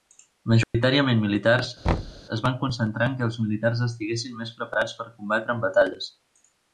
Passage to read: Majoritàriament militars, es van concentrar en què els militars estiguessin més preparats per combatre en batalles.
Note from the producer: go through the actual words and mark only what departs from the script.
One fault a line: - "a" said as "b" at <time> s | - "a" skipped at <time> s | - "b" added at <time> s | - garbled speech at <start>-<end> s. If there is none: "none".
none